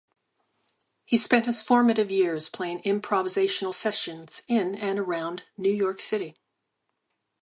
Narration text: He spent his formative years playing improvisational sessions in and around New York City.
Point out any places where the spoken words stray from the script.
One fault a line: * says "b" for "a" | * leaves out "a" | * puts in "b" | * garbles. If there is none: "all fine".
all fine